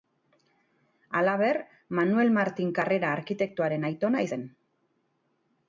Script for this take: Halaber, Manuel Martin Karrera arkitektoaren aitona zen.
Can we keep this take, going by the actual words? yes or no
yes